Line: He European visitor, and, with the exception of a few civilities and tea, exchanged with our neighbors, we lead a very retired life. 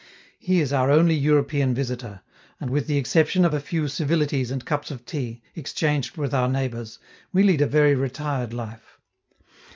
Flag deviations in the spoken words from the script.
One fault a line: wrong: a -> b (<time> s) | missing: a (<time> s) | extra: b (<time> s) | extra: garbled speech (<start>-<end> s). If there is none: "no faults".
extra: is our only (0.6 s)
extra: cups of (4.6 s)